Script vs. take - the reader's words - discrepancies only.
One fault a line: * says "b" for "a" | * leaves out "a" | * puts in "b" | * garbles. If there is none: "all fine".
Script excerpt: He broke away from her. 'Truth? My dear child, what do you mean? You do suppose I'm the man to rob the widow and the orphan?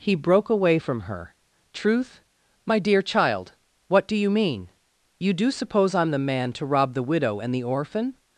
all fine